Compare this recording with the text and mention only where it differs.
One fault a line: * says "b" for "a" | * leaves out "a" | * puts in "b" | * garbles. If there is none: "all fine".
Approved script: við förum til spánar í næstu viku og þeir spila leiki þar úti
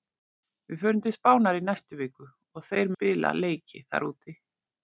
all fine